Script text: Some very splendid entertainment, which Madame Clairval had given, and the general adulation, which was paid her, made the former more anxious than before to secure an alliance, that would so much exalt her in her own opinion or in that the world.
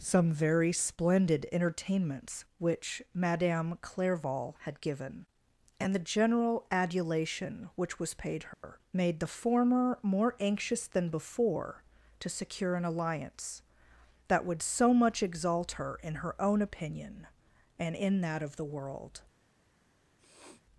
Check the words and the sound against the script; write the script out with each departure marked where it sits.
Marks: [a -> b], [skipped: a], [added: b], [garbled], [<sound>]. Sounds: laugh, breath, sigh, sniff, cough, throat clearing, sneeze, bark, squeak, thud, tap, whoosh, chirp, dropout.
Some very splendid [entertainment, -> entertainments] which Madame Clairval had given, and the general adulation, which was paid her, [dropout] made the former more anxious than before to secure an alliance, that would so much exalt her in her own opinion [or -> and] in that [added: of] the world. [sniff]